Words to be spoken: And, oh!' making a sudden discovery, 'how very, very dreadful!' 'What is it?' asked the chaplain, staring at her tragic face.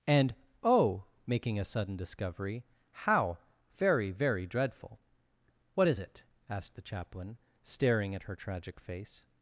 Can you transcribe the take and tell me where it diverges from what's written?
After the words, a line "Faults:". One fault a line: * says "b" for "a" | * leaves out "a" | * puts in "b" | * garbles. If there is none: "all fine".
And, oh!' making a sudden discovery, 'how very, very dreadful!' 'What is it?' asked the chaplain, staring at her tragic face.
Faults:
all fine